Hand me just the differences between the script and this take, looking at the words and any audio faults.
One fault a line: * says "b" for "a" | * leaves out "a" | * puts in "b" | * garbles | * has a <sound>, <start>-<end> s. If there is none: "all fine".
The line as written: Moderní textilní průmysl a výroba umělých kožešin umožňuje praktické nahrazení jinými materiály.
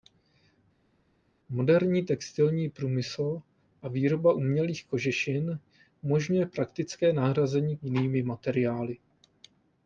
all fine